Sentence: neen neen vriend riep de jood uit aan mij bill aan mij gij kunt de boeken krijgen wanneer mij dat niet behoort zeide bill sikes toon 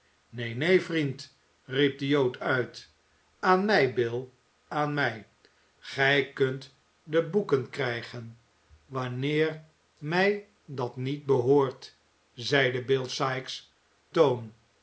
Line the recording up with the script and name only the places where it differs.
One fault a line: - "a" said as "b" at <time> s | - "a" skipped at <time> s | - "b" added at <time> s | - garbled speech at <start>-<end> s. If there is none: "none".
none